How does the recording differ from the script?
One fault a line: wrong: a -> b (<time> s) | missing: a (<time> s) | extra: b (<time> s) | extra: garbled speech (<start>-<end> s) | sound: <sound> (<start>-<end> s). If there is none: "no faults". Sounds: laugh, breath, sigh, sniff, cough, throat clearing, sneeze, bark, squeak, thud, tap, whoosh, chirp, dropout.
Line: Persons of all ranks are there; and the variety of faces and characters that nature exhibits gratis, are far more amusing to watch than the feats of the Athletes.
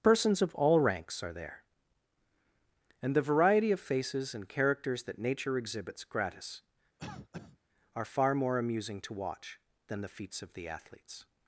sound: cough (7.0-7.6 s)